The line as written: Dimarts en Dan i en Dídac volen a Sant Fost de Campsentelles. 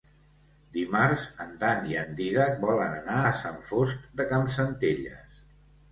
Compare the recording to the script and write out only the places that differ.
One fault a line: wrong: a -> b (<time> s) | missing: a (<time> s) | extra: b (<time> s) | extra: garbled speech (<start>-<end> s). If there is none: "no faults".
extra: anar (3.0 s)